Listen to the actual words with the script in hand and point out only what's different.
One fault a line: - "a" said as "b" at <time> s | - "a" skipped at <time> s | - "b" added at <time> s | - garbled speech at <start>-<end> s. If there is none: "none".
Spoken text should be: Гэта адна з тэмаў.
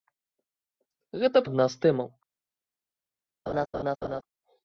none